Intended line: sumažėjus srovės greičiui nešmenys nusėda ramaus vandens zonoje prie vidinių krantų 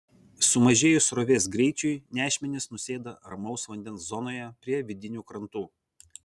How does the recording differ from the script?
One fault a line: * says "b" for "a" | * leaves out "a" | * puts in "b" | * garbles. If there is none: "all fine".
all fine